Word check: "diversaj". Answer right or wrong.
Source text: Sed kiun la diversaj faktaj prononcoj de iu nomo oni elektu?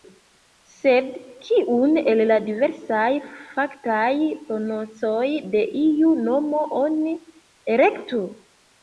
right